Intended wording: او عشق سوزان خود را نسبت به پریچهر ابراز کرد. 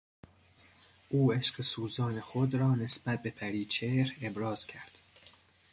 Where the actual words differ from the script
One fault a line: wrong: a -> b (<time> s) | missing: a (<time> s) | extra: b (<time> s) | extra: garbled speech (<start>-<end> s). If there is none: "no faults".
no faults